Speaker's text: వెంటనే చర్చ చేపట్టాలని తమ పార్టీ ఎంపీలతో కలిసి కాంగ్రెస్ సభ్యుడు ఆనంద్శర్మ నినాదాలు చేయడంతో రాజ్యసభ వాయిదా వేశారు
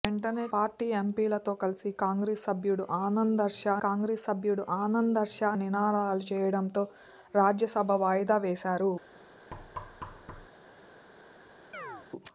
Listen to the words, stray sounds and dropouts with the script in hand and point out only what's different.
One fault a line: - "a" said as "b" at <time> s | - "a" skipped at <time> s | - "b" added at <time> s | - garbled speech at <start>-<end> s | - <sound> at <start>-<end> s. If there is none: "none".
- "చర్చ చేపట్టాలని తమ పార్టీ ఎంపీలతో కలిసి" said as "పార్టీ ఎంపీలతో కలిసి కాంగ్రెస్ సభ్యుడు ఆనంద్శర్మ" at 0.5 s
- thud at 9.5-10.5 s
- chirp at 11.7-12.1 s